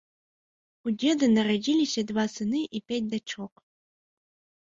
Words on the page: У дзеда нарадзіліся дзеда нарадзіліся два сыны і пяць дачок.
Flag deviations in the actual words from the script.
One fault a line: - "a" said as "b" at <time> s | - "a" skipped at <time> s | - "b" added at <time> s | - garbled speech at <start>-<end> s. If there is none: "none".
- "дзеда нарадзіліся" skipped at 2.0 s